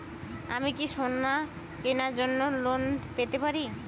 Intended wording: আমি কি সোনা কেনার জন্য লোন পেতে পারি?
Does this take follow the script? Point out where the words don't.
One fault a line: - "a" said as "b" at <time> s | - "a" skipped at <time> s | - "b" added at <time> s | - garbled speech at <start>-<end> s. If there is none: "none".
none